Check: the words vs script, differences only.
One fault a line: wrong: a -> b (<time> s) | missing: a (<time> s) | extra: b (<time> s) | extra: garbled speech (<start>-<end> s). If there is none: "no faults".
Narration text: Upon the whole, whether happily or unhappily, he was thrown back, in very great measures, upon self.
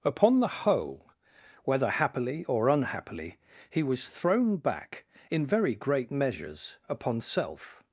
no faults